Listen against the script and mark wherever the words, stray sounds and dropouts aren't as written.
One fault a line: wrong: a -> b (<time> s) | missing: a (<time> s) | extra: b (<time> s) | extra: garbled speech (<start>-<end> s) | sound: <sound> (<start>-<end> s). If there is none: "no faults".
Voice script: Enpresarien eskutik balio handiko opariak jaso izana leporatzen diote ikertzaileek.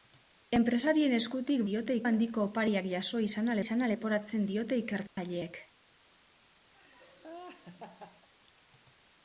wrong: balio -> diote (1.7 s)
extra: izana (3.6 s)
sound: dropout (5.1-5.2 s)
sound: laugh (6.7-8.3 s)